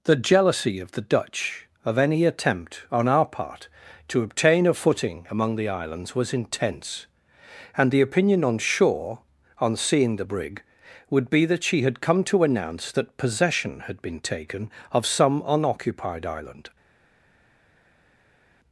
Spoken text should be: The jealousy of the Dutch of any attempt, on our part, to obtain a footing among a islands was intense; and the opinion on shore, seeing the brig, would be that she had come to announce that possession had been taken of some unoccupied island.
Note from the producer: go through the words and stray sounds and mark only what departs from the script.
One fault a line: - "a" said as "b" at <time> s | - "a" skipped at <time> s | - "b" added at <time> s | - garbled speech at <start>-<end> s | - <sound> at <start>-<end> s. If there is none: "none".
- "a" said as "the" at 5.6 s
- "on" added at 9.6 s